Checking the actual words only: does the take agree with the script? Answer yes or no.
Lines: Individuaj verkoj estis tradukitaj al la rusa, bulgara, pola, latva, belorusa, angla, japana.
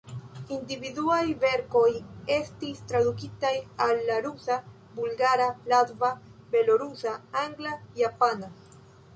no